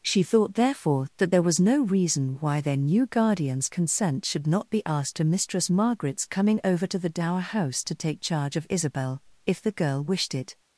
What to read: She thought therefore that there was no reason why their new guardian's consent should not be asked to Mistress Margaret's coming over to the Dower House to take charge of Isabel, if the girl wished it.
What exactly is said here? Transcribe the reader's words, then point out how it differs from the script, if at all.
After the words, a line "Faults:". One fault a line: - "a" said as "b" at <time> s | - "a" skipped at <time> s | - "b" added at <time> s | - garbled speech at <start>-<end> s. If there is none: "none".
She thought therefore that there was no reason why their new guardian's consent should not be asked to Mistress Margaret's coming over to the Dower House to take charge of Isabel, if the girl wished it.
Faults:
none